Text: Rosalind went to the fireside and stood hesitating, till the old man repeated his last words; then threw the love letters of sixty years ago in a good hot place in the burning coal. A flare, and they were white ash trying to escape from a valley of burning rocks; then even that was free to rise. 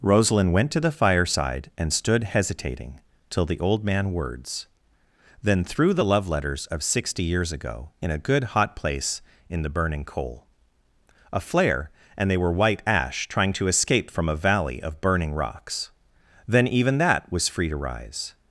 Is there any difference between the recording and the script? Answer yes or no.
yes